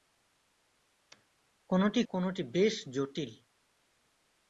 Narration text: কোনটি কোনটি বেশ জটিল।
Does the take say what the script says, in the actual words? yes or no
yes